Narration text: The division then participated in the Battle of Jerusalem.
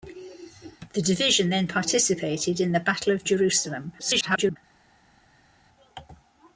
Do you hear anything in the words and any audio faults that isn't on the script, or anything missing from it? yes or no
yes